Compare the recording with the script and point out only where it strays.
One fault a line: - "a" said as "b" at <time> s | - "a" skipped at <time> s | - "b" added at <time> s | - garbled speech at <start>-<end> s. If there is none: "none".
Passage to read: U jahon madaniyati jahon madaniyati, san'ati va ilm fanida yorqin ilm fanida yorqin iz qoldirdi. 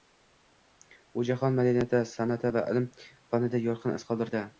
- "jahon madaniyati" skipped at 2.0 s
- "ilm fanida yorqin" skipped at 4.0 s